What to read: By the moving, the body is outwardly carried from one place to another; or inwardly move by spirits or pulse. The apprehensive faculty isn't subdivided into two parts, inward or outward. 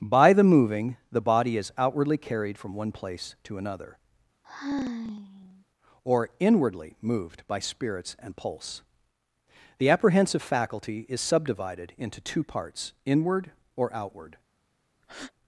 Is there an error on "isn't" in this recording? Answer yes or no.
yes